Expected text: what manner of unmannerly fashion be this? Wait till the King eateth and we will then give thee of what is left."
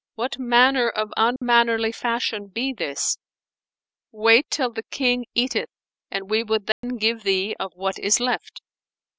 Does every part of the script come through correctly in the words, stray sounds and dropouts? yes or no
no